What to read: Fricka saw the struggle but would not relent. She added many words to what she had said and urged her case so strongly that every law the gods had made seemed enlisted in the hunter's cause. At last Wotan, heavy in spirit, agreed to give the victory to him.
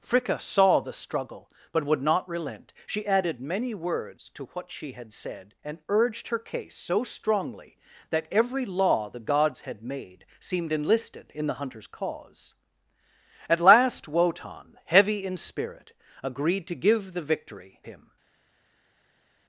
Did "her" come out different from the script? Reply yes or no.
no